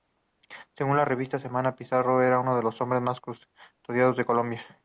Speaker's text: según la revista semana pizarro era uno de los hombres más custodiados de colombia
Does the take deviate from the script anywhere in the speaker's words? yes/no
no